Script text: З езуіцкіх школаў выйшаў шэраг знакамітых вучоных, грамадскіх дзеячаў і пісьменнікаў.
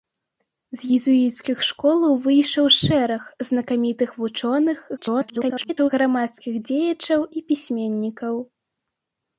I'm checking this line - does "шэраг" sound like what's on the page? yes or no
yes